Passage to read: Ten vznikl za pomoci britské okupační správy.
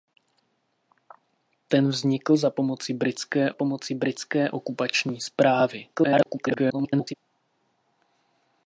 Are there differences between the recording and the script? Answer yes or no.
yes